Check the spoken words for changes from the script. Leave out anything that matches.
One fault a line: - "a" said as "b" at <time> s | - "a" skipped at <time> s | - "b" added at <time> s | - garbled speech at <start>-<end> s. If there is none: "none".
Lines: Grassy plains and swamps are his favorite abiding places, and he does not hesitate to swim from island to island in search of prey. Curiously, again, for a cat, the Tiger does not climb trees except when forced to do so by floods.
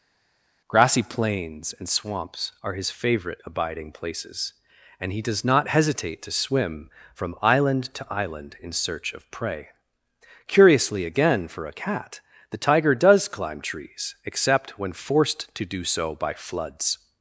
- "not" skipped at 13.3 s